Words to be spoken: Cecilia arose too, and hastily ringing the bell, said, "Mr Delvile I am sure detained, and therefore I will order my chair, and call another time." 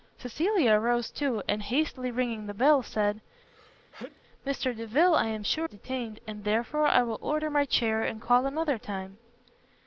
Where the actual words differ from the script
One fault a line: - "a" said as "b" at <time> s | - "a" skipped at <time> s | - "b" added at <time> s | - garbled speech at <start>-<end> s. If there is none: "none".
none